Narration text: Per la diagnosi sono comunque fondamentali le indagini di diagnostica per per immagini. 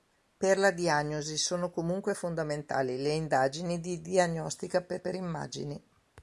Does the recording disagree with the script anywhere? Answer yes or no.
no